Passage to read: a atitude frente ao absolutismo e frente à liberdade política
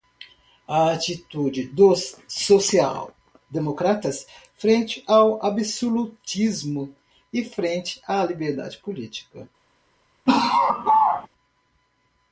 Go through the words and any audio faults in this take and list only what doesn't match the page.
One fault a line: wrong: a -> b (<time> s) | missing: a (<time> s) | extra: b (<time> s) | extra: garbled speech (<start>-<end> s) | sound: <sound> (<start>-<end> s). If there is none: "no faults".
extra: dos social democratas (1.7 s)
sound: laugh (10.3-11.3 s)